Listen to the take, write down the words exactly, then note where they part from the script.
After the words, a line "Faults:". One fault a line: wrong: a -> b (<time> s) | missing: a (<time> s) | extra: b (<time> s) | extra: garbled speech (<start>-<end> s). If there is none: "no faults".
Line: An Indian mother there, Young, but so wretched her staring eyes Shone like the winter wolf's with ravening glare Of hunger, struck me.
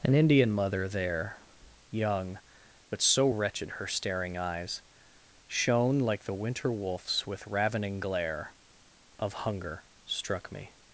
An Indian mother there, Young, but so wretched her staring eyes Shone like the winter wolf's with ravening glare Of hunger, struck me.
Faults:
no faults